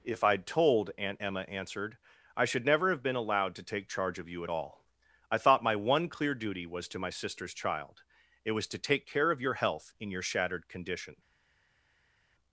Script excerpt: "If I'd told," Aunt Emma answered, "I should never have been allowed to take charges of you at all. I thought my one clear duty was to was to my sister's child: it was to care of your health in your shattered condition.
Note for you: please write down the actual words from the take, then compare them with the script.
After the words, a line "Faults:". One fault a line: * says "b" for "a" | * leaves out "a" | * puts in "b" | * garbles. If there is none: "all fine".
"If I'd told," Aunt Emma answered, "I should never have been allowed to take charge of you at all. I thought my one clear duty was to my sister's child: it was to take care of your health in your shattered condition.
Faults:
* says "charge" for "charges"
* leaves out "was to"
* puts in "take"